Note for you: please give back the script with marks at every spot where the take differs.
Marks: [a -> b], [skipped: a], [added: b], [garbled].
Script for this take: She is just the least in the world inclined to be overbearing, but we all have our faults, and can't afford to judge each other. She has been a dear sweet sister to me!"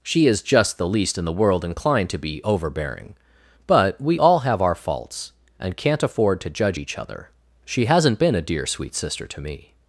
She is just the least in the world inclined to be overbearing, but we all have our faults, and can't afford to judge each other. She [has -> hasn't] been a dear sweet sister to me!"